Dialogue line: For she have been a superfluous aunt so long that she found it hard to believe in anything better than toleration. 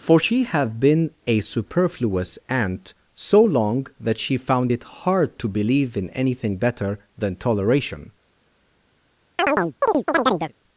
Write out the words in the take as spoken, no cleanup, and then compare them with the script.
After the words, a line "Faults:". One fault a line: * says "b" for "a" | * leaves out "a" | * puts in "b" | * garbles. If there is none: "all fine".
For she have been a superfluous aunt so long that she found it hard to believe in anything better than toleration.
Faults:
all fine